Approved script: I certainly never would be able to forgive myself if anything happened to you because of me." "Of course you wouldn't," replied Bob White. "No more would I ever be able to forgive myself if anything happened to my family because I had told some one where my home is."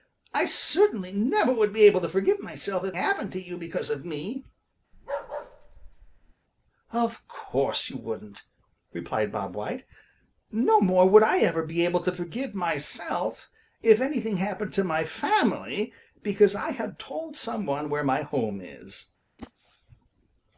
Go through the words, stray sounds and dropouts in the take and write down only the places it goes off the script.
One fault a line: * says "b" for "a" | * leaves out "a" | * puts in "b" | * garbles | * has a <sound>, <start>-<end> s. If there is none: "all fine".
* leaves out "anything"
* has a bark, 4.9-6.3 s
* has a whoosh, 19.4-19.5 s